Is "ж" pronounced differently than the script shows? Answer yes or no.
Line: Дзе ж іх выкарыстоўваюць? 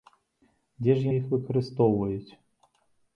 no